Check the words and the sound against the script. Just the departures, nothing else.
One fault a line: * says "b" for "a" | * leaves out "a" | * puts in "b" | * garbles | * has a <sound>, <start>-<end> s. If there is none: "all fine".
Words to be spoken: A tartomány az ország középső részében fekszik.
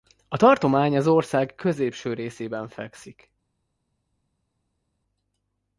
all fine